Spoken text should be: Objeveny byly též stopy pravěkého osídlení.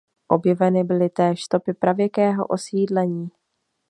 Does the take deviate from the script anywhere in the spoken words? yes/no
no